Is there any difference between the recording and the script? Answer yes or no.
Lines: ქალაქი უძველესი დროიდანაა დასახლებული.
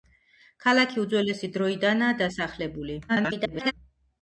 yes